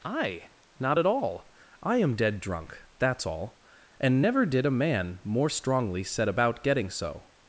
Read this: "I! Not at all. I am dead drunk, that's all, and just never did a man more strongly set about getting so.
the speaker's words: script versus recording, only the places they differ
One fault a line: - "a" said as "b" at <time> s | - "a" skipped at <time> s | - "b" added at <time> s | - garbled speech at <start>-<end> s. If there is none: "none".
- "just" skipped at 4.2 s